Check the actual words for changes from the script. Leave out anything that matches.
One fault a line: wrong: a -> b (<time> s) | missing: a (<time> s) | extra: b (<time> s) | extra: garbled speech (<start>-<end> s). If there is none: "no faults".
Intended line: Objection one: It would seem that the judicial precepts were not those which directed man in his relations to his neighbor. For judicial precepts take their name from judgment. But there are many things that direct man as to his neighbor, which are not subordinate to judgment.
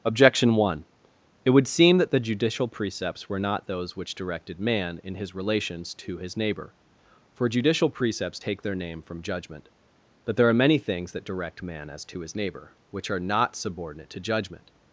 no faults